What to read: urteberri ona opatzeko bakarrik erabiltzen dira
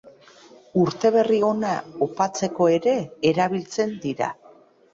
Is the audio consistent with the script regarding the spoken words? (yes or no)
no